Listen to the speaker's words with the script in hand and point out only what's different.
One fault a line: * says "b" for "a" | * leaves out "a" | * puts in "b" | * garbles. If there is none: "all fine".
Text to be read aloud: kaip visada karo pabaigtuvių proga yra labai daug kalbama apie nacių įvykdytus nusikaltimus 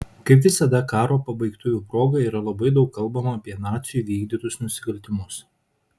all fine